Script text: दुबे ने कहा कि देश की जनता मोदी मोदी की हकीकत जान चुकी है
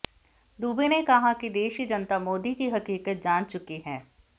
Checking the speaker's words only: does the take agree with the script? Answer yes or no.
no